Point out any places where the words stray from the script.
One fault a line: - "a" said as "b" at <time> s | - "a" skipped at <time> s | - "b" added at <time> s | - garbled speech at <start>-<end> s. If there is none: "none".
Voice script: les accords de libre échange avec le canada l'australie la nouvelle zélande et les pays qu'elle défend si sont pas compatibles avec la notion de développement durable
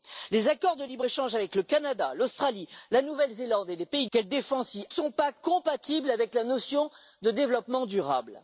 none